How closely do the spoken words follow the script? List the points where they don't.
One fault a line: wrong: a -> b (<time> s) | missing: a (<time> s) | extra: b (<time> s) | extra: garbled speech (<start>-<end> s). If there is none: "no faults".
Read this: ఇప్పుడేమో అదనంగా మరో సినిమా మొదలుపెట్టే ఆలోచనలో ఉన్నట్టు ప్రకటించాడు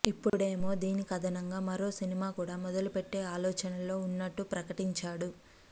extra: దీనికి (0.8 s)
extra: కూడా (2.3 s)